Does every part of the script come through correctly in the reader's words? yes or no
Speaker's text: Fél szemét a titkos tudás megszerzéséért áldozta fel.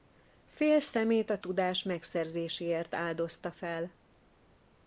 no